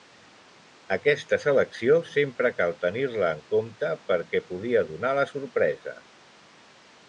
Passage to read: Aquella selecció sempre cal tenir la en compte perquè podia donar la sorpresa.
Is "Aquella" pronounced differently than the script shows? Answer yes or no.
yes